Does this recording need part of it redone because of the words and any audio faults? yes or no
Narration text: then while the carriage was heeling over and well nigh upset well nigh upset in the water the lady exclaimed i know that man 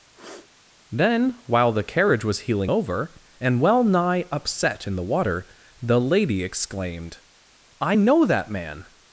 yes